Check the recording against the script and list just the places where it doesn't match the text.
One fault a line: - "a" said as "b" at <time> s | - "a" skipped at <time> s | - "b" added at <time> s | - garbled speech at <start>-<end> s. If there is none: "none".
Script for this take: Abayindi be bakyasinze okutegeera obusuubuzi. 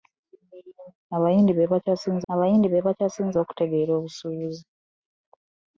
- "abayindi be bakyasinze" added at 2.3 s